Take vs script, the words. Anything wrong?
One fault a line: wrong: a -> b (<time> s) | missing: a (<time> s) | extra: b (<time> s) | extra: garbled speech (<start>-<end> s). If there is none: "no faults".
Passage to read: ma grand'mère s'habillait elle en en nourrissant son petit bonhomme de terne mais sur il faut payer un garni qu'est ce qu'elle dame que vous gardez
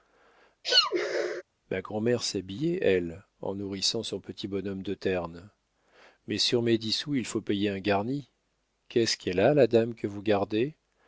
missing: en (3.5 s)
extra: mes dix sous (6.6 s)
extra: a la (9.4 s)